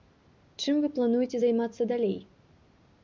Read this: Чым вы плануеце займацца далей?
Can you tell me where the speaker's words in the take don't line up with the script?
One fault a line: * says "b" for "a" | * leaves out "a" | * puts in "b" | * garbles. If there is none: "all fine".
all fine